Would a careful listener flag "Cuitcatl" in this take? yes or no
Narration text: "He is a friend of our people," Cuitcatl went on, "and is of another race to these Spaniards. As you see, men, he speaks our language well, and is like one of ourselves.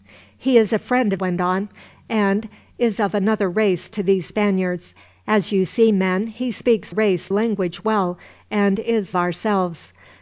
yes